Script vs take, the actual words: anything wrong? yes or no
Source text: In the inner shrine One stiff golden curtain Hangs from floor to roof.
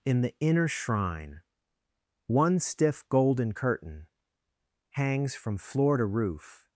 no